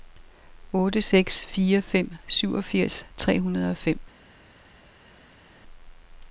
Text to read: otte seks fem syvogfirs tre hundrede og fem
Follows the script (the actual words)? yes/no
no